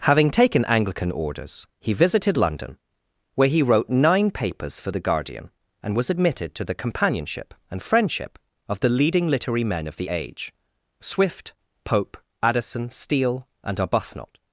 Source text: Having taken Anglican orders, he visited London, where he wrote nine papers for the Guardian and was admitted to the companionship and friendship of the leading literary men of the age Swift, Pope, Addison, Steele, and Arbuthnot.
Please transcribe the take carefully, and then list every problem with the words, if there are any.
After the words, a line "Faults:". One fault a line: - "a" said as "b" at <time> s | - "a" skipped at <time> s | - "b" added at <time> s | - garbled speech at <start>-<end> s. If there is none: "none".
Having taken Anglican orders, he visited London, where he wrote nine papers for the Guardian and was admitted to the companionship and friendship of the leading literary men of the age Swift, Pope, Addison, Steele, and Arbuthnot.
Faults:
none